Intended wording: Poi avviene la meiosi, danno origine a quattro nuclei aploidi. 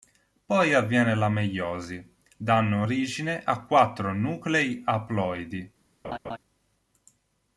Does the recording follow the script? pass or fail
pass